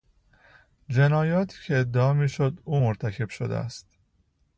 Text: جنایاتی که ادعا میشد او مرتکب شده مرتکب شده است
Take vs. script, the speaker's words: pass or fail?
fail